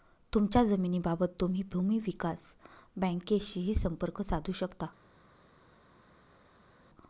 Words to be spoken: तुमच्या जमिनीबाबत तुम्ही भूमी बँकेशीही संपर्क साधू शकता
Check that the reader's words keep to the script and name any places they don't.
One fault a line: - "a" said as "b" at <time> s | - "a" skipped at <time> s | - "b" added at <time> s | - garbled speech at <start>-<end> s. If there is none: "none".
- "विकास" added at 2.0 s